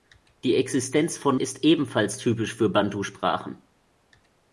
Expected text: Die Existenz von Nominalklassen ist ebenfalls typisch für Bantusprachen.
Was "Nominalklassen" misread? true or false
true